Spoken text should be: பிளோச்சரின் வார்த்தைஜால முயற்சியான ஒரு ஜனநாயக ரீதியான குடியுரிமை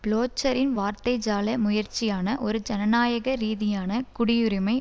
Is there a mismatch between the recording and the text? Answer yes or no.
no